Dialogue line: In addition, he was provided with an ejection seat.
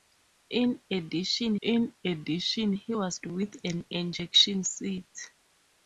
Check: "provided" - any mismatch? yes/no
yes